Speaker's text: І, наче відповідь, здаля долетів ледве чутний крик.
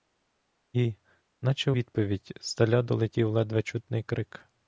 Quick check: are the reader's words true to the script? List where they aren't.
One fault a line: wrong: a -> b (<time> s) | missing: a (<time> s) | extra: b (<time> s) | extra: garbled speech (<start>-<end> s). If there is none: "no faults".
no faults